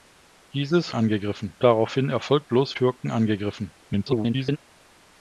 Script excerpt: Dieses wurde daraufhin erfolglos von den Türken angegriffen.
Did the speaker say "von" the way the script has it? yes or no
no